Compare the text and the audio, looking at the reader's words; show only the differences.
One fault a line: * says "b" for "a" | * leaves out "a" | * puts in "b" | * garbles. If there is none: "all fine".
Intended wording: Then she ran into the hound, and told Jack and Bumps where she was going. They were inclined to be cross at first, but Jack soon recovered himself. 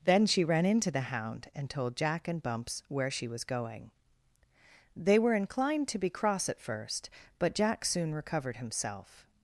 all fine